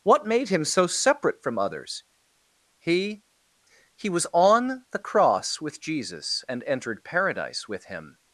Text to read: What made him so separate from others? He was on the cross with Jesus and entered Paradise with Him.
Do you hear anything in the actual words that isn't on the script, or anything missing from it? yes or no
yes